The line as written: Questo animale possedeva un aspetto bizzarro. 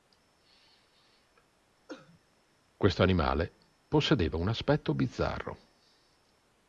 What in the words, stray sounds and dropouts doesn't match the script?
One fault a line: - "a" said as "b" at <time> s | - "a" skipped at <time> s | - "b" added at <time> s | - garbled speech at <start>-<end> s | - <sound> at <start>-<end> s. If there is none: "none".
- cough at 1.9-2.2 s